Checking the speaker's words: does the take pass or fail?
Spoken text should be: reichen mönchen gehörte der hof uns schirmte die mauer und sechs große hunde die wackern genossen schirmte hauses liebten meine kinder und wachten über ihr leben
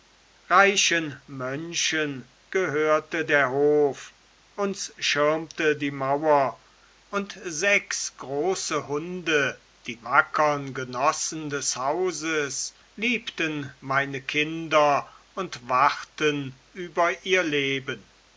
fail